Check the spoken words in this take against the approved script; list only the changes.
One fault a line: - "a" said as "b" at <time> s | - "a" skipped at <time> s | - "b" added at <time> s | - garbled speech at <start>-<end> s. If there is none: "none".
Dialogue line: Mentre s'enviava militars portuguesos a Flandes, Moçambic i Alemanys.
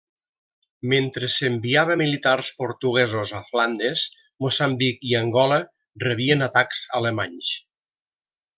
- "Angola rebien atacs" added at 5.2 s